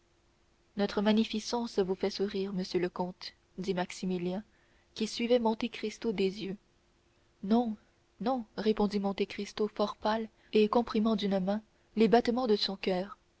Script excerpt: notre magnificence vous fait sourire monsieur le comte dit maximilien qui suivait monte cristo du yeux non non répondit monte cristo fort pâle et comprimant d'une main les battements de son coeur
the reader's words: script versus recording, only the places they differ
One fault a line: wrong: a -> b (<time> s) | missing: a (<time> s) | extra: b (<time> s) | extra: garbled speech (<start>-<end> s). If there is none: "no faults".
wrong: du -> des (6.1 s)